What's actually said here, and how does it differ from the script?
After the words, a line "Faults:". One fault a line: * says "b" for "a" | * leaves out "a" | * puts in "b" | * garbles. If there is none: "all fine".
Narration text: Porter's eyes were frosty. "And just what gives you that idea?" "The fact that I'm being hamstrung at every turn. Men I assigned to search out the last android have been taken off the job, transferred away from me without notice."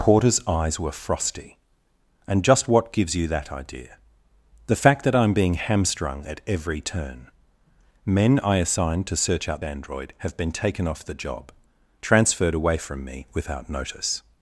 Porter's eyes were frosty. "And just what gives you that idea?" "The fact that I'm being hamstrung at every turn. Men I assigned to search out android have been taken off the job, transferred away from me without notice."
Faults:
* leaves out "the last"